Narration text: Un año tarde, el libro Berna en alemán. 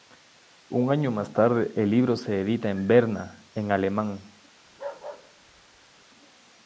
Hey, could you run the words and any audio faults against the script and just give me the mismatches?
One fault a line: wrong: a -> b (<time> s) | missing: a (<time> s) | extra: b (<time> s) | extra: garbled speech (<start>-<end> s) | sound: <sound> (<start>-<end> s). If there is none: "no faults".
extra: más (1.1 s)
extra: se edita en (2.1 s)
sound: bark (4.7-6.1 s)